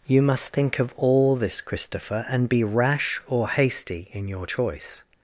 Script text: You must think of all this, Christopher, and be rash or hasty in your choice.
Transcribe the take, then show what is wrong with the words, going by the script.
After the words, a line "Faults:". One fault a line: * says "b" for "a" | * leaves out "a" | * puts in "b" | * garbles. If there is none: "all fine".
You must think of all this, Christopher, and be rash or hasty in your choice.
Faults:
all fine